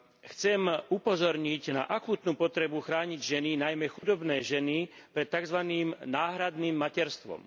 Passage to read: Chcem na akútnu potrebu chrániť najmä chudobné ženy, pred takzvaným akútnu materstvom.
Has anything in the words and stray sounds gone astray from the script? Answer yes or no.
yes